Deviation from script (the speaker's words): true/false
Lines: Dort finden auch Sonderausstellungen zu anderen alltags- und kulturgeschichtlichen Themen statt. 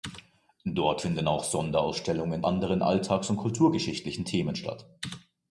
true